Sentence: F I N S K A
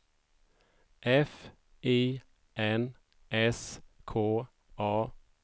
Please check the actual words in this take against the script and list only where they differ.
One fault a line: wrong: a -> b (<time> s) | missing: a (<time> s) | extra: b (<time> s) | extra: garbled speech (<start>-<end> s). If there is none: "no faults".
no faults